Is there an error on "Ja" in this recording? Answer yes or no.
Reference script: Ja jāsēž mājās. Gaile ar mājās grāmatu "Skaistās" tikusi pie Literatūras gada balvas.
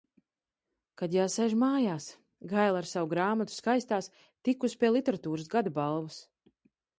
yes